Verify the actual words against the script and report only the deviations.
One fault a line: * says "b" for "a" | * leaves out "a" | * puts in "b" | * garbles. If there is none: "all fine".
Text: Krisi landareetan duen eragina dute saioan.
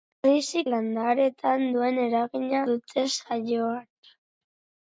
all fine